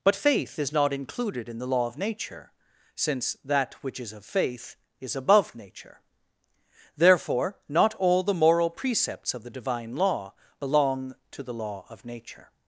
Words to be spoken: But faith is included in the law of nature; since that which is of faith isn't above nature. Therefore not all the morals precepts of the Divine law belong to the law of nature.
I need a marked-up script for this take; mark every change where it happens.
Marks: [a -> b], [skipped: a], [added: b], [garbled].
But faith is [added: not] included in the law of nature; since that which is of faith [isn't -> is] above nature. Therefore not all the [morals -> moral] precepts of the Divine law belong to the law of nature.